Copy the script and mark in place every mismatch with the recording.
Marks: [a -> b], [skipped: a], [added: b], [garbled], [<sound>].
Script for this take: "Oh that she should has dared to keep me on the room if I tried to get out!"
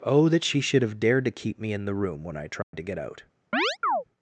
"Oh that she should [has -> have] dared to keep me [on -> in] the room [if -> when] I tried [dropout] to get out!" [chirp]